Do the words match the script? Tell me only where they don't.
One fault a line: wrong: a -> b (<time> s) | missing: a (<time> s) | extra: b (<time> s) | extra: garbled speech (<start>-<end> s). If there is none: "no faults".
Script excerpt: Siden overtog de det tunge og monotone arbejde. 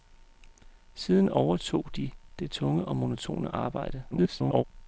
extra: garbled speech (4.1-4.6 s)